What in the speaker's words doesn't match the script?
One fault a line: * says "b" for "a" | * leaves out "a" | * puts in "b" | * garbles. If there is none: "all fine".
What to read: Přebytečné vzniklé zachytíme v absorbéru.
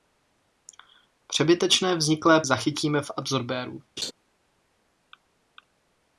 all fine